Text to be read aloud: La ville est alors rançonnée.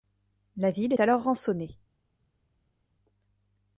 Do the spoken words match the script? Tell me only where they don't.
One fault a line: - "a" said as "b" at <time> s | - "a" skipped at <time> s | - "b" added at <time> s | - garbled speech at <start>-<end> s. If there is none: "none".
- "est" skipped at 0.9 s